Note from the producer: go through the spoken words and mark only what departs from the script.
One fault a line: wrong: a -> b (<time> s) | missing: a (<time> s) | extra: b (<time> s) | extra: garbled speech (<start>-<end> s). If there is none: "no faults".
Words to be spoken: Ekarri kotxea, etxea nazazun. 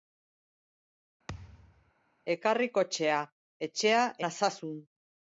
no faults